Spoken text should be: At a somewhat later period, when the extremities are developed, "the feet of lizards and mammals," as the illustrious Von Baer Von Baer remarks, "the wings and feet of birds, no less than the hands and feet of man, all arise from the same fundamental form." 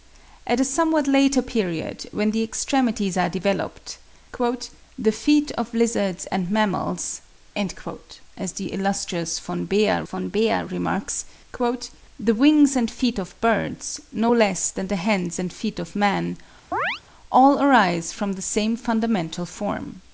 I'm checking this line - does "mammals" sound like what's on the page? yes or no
yes